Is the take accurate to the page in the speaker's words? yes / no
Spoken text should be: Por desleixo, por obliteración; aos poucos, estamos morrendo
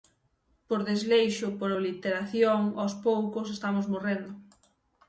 yes